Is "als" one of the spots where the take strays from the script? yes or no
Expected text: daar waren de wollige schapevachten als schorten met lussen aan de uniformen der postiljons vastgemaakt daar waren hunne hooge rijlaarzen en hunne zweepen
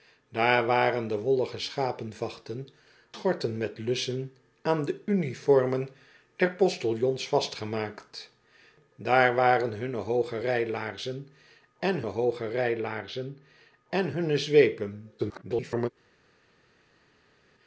yes